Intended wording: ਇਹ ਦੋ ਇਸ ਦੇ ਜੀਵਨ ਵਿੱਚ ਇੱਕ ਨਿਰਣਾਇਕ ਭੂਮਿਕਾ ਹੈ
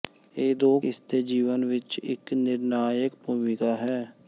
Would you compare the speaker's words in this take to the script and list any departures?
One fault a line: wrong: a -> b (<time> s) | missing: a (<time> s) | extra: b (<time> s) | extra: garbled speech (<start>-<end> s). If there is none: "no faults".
no faults